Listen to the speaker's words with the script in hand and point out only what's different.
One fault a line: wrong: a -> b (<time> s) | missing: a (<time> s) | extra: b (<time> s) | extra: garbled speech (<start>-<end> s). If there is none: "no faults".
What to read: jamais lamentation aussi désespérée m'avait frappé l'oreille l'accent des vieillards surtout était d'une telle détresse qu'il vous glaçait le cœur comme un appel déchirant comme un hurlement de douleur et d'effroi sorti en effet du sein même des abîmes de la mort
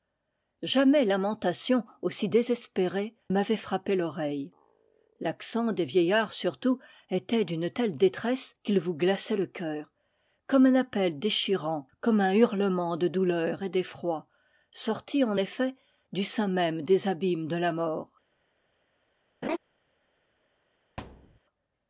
no faults